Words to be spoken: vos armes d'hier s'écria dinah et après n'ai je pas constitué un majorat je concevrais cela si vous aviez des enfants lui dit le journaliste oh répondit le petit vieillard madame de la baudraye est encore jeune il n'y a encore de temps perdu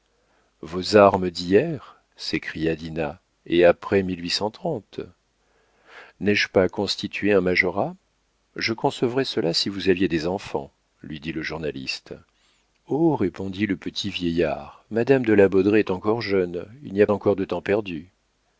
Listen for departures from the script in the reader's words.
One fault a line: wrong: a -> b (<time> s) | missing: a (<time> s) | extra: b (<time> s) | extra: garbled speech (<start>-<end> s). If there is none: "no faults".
no faults